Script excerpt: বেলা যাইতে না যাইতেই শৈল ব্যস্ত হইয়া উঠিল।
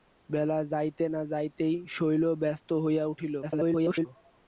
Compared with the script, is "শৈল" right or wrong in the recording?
right